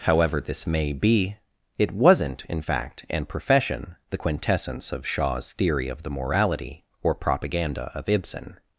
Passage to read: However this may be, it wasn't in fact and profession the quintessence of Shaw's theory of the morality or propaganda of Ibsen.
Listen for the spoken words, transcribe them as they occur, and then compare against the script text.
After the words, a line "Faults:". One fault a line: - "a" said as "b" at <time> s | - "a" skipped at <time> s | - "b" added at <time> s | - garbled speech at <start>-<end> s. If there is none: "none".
However this may be, it wasn't in fact and profession the quintessence of Shaw's theory of the morality or propaganda of Ibsen.
Faults:
none